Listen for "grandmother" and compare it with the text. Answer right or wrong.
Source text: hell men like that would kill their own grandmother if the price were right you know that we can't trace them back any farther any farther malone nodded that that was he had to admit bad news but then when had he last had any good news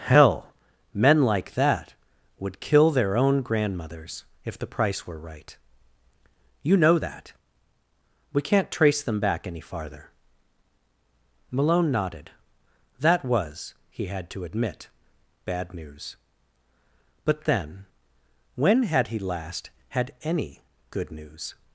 wrong